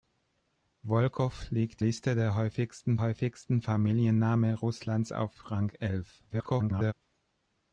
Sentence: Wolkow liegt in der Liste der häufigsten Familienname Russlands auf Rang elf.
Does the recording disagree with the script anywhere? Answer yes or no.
yes